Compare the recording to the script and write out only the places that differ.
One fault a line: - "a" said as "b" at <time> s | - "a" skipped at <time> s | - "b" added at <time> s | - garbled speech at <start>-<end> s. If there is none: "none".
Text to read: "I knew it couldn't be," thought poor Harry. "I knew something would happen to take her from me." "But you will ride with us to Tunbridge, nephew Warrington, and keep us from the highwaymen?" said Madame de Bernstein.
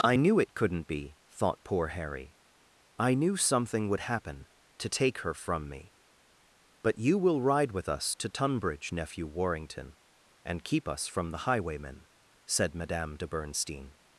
none